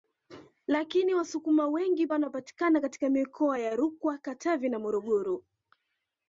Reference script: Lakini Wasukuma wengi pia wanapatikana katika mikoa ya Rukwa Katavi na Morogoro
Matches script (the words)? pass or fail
fail